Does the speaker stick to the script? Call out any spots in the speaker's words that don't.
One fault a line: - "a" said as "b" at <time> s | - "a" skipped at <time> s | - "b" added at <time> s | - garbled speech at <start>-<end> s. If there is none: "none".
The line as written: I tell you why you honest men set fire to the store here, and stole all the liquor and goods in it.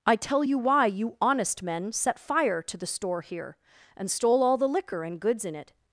none